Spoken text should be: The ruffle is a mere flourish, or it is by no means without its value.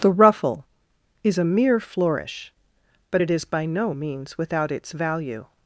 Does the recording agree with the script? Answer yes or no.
no